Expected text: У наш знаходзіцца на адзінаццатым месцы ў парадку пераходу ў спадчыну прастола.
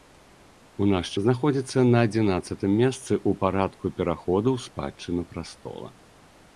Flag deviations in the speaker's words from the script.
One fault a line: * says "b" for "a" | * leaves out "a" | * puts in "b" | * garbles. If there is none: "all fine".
all fine